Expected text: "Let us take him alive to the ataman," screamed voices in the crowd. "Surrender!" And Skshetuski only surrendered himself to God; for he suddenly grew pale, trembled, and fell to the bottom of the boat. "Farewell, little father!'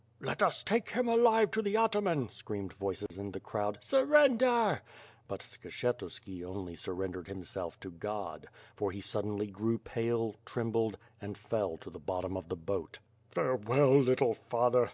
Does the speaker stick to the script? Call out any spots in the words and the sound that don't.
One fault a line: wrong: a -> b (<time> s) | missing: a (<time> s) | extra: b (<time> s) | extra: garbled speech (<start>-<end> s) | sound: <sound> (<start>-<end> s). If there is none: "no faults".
sound: dropout (3.1-3.1 s)
wrong: And -> But (5.3 s)